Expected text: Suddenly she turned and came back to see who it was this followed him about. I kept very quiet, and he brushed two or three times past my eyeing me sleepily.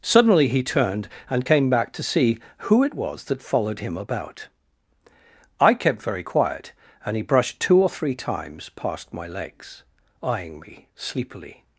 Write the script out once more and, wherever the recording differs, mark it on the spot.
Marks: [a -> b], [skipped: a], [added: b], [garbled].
Suddenly [she -> he] turned and came back to see who it was [this -> that] followed him about. I kept very quiet, and he brushed two or three times past my [added: legs] eyeing me sleepily.